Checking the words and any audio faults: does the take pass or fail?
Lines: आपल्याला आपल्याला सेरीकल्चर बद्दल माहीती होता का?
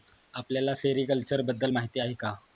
fail